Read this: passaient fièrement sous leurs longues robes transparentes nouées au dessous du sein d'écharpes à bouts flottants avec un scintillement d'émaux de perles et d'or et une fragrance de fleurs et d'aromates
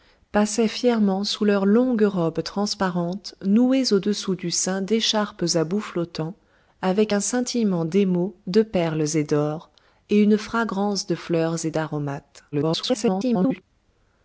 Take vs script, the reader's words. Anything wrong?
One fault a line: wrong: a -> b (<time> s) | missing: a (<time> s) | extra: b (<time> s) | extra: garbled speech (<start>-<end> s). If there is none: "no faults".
extra: garbled speech (12.5-13.6 s)